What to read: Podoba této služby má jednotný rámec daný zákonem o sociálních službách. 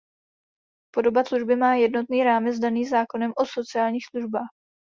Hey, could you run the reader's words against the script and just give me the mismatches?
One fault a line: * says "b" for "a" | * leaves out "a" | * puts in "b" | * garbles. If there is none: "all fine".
* leaves out "této"